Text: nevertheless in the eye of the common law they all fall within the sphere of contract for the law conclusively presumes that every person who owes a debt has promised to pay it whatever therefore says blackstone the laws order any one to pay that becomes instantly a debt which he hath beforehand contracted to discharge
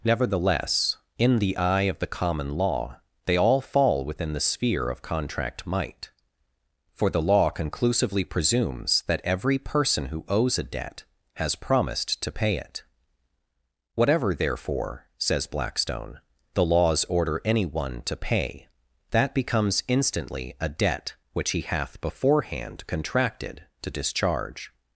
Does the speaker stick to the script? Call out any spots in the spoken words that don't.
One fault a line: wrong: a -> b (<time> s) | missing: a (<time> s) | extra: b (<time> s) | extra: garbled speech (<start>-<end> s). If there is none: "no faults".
extra: might (5.7 s)